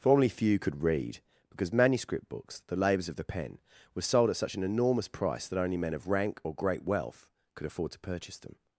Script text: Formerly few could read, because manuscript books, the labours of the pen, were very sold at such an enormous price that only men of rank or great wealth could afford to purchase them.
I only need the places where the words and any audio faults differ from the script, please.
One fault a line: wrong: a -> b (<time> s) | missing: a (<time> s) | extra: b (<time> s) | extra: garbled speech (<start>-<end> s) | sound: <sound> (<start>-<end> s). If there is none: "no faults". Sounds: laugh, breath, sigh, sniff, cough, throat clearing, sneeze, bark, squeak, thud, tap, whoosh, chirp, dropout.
missing: very (4.0 s)